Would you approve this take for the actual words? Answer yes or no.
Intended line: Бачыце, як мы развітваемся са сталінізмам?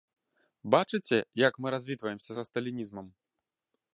yes